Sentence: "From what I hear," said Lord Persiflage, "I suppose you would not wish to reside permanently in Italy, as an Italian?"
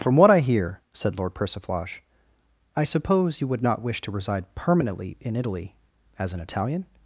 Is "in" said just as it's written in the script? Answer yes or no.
yes